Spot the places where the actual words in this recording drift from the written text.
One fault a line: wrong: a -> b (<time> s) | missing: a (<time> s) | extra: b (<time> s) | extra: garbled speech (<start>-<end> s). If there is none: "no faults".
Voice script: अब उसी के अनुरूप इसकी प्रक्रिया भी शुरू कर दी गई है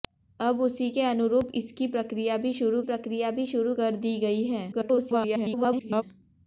extra: प्रक्रिया भी शुरू (2.8 s)
extra: garbled speech (4.7-6.0 s)